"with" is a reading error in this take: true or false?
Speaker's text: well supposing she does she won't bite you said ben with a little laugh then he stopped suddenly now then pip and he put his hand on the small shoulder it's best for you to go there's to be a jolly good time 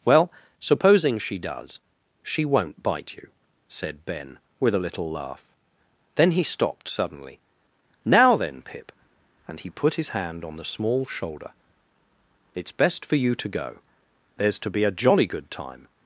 false